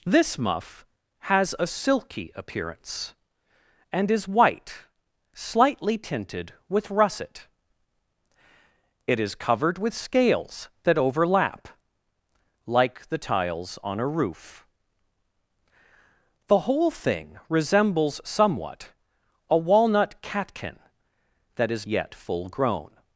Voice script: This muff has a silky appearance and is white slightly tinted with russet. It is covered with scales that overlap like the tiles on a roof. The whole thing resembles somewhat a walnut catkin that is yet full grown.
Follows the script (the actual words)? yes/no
yes